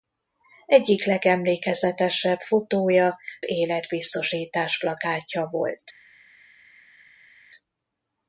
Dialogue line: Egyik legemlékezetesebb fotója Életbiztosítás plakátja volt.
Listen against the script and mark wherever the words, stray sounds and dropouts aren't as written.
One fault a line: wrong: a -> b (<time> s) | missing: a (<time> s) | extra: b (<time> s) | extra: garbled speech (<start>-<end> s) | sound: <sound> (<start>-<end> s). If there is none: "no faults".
no faults